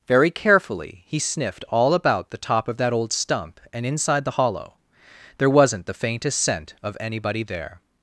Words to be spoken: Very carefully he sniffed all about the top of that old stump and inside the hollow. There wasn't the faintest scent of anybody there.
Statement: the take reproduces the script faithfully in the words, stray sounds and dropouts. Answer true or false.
true